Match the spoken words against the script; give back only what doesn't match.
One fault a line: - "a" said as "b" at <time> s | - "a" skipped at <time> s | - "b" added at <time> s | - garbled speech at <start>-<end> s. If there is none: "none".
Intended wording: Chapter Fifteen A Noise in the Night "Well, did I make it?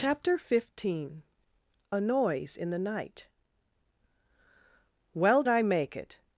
- "did" skipped at 5.4 s